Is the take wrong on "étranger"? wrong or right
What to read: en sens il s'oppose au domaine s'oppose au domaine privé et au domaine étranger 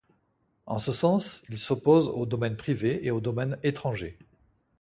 right